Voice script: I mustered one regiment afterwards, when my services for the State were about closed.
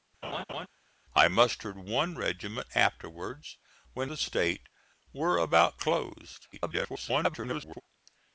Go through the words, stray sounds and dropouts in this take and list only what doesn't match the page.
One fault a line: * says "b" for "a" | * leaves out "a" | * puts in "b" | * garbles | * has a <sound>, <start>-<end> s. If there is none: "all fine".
* has a laugh, 0.2-0.7 s
* leaves out "my services for"
* garbles